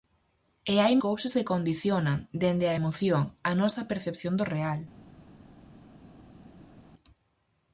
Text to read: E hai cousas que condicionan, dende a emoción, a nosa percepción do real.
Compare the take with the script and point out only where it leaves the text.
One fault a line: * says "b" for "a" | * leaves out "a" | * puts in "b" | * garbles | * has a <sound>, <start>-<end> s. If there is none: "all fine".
all fine